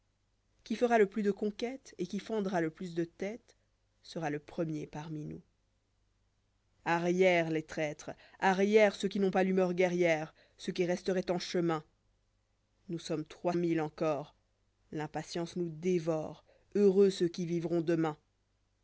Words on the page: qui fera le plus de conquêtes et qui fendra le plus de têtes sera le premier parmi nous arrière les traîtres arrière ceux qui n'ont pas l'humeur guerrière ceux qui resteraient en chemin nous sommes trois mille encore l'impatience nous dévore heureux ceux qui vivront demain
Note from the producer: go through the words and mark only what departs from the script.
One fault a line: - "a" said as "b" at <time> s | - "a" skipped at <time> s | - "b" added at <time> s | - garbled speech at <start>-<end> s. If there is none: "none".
none